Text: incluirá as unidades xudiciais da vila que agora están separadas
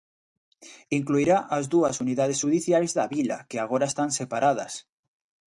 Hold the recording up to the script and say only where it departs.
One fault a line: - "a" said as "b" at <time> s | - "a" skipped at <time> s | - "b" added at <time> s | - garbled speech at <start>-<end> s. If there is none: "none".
- "dúas" added at 1.7 s